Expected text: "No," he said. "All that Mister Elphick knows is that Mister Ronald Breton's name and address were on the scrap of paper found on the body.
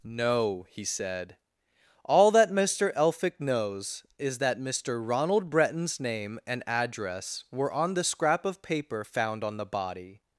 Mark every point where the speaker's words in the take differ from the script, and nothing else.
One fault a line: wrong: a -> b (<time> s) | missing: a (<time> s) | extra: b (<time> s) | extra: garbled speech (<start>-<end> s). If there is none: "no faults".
no faults